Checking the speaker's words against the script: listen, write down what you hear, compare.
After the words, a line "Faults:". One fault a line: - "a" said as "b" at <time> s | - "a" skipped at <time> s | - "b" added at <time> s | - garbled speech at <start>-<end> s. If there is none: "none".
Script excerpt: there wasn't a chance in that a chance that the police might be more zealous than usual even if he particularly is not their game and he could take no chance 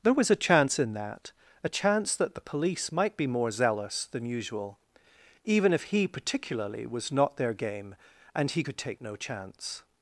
there was a chance in that a chance that the police might be more zealous than usual even if he particularly was not their game and he could take no chance
Faults:
- "wasn't" said as "was" at 0.1 s
- "is" said as "was" at 6.8 s